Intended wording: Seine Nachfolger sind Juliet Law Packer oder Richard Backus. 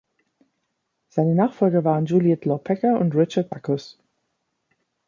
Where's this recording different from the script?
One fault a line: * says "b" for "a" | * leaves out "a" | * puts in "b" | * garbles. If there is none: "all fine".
* says "waren" for "sind"
* says "und" for "oder"